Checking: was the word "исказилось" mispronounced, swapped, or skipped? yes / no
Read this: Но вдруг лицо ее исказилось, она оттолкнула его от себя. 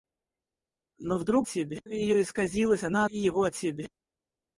no